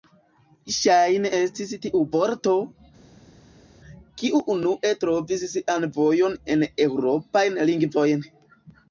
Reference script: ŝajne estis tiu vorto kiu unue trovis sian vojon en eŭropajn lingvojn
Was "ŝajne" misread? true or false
false